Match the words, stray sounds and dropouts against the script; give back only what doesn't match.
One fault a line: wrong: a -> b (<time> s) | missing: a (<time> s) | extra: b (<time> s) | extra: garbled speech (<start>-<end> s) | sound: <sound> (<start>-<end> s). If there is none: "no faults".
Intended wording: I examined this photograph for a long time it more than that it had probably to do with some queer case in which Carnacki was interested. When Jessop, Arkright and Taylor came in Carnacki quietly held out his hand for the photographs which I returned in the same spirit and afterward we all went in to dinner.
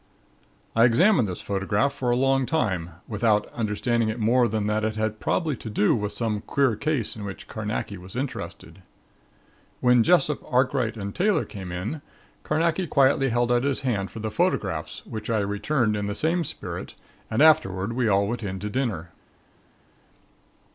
extra: without understanding (3.1 s)